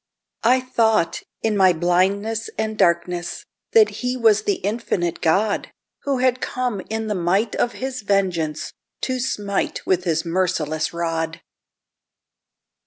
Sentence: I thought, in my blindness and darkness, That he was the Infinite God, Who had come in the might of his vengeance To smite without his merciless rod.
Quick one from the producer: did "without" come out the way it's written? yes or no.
no